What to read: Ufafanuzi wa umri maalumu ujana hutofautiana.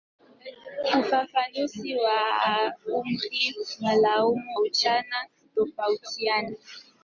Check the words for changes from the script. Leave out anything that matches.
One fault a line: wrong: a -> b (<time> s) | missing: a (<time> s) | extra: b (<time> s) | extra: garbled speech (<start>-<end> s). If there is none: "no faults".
no faults